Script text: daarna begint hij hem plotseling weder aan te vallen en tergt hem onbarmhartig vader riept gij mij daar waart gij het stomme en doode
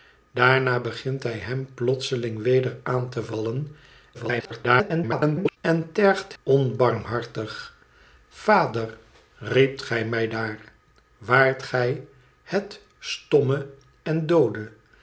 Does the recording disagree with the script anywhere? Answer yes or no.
yes